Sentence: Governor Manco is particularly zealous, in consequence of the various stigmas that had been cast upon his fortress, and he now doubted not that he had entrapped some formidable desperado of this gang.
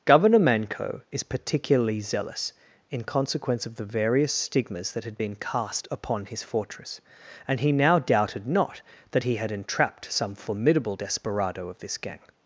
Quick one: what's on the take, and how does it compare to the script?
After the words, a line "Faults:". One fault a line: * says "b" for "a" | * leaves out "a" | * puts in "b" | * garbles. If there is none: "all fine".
Governor Manco is particularly zealous, in consequence of the various stigmas that had been cast upon his fortress, and he now doubted not that he had entrapped some formidable desperado of this gang.
Faults:
all fine